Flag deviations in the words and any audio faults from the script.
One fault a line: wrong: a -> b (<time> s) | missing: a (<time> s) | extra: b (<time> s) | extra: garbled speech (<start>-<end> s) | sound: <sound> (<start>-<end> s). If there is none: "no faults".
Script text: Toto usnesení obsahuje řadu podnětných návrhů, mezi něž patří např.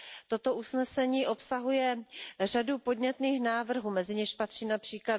no faults